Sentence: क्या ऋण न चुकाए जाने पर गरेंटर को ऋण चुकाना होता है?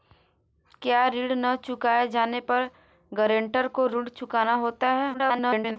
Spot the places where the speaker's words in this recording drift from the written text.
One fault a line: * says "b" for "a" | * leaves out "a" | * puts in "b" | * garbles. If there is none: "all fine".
* garbles